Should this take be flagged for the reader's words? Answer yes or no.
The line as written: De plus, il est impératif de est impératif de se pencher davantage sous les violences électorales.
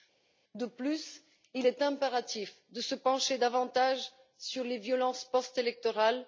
yes